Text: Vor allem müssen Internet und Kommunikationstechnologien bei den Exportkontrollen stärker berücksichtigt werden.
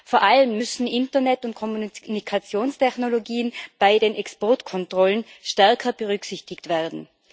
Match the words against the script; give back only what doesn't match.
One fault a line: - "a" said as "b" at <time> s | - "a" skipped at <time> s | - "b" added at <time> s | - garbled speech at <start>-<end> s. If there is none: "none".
none